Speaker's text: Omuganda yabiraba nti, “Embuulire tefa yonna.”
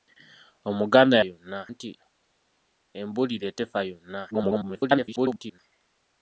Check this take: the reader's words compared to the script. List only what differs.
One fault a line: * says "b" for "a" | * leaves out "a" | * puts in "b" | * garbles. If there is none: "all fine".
* says "yonna" for "yabiraba"
* garbles